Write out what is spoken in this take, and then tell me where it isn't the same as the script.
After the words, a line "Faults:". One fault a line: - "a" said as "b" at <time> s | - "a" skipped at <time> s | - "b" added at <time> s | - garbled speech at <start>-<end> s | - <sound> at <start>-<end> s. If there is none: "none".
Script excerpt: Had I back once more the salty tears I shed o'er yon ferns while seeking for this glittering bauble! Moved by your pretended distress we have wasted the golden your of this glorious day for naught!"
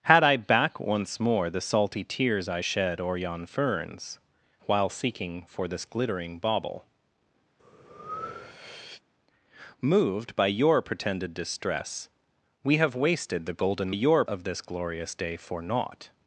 Had I back once more the salty tears I shed o'er yon ferns while seeking for this glittering bauble! Moved by your pretended distress we have wasted the golden your of this glorious day for naught!"
Faults:
- breath at 7.6-9.0 s